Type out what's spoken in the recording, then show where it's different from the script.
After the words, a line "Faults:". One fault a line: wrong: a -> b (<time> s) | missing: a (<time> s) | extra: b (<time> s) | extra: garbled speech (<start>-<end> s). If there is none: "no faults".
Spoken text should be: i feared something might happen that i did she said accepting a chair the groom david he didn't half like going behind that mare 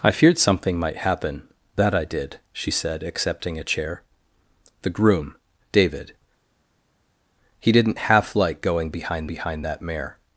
i feared something might happen that i did she said accepting a chair the groom david he didn't half like going behind behind that mare
Faults:
extra: behind (9.2 s)